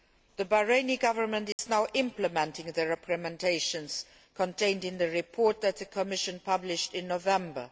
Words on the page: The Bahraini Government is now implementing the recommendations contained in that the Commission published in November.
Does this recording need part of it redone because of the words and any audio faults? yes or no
yes